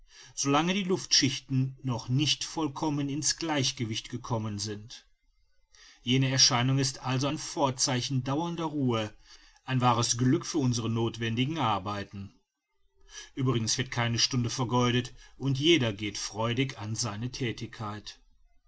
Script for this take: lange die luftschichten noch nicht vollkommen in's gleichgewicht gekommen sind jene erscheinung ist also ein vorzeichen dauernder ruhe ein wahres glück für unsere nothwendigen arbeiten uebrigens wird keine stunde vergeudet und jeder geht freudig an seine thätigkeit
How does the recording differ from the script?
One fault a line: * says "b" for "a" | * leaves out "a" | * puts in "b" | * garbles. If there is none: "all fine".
all fine